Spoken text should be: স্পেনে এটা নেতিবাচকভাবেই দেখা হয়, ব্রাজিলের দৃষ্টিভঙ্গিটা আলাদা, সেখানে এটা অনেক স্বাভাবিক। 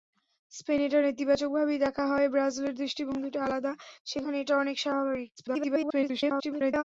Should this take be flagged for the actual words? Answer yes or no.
yes